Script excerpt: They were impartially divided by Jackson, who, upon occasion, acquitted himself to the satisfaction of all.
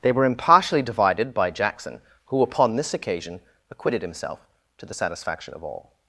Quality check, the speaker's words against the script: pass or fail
fail